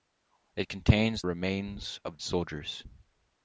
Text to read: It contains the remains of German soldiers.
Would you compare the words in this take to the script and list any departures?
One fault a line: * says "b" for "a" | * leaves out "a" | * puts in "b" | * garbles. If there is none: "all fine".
* leaves out "the"
* leaves out "German"